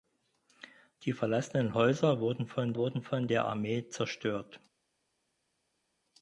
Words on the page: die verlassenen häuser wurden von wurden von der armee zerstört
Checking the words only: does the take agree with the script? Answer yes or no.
yes